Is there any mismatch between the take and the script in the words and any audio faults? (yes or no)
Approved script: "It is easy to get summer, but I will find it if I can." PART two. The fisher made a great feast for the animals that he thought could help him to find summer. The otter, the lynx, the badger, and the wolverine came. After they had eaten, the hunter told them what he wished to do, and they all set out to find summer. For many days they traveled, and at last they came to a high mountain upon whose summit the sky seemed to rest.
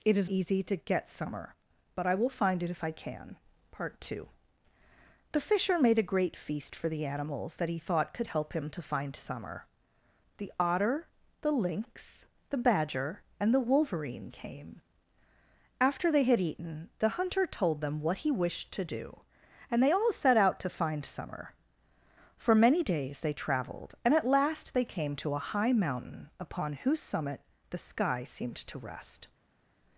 no